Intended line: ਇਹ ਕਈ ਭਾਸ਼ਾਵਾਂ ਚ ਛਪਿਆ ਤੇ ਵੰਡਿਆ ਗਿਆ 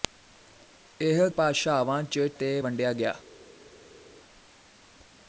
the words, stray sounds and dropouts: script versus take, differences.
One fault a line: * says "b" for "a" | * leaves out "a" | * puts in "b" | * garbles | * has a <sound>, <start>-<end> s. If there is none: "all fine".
* leaves out "ਕਈ"
* leaves out "ਛਪਿਆ"